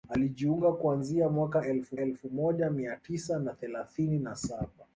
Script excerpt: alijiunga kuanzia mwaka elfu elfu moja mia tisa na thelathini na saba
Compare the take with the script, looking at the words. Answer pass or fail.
pass